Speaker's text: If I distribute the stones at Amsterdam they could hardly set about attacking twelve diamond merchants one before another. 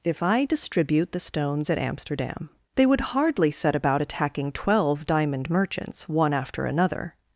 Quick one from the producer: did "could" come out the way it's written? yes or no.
no